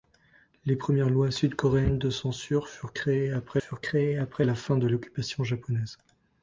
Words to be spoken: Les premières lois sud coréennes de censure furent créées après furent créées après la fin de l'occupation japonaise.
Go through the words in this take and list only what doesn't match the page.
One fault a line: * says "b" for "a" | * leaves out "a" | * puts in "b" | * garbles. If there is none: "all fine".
all fine